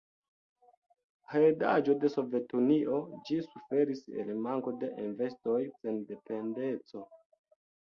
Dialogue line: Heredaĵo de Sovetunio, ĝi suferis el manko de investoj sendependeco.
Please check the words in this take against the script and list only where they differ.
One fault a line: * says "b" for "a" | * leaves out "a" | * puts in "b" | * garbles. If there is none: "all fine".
all fine